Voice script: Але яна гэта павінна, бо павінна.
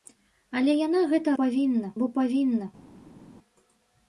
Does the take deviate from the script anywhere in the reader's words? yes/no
no